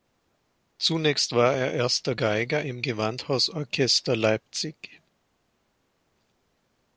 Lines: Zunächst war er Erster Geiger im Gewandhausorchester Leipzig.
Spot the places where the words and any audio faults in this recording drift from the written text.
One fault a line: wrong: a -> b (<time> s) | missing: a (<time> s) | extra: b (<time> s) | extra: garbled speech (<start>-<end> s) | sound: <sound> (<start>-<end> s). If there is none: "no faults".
no faults